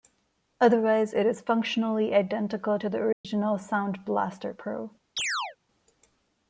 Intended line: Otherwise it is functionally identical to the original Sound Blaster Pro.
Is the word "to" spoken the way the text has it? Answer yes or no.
yes